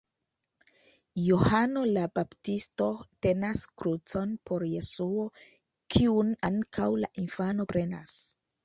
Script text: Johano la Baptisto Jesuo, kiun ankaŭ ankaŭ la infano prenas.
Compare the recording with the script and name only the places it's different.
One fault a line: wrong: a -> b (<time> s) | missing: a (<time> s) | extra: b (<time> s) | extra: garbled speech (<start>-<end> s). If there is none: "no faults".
extra: tenas krucon por (3.3 s)
missing: ankaŭ (6.9 s)